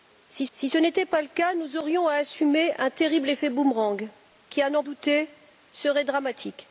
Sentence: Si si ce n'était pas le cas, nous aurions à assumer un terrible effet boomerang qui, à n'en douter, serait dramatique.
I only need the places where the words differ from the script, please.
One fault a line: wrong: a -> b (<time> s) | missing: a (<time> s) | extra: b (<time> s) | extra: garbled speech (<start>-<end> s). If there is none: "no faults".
no faults